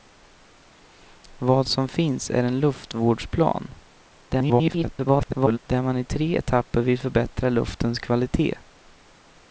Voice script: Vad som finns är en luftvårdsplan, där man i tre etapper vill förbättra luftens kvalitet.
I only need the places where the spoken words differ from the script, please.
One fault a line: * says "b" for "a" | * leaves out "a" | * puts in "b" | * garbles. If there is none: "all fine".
* garbles